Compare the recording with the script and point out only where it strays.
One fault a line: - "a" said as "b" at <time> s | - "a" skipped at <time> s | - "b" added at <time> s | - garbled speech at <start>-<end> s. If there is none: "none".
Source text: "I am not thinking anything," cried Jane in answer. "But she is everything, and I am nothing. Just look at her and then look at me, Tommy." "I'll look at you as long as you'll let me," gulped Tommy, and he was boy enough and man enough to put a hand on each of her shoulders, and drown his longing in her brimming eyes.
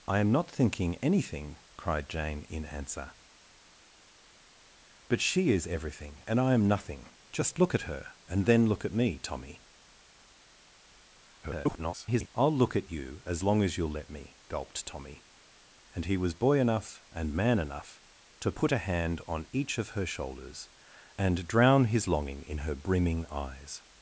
- garbled speech at 11.4-12.3 s